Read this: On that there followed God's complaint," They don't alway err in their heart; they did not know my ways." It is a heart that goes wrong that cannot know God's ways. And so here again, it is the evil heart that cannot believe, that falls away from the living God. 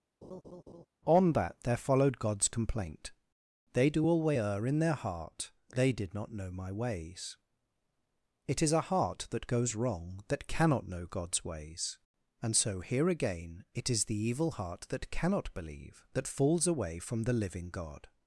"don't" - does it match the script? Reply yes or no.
no